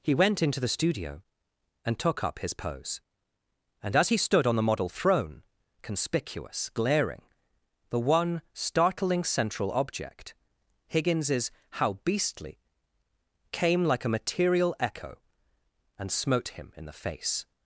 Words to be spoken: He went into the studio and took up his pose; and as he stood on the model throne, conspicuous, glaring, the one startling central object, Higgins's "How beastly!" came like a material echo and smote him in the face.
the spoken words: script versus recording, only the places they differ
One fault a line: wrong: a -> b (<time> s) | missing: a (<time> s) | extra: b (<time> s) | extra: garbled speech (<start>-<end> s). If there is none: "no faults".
no faults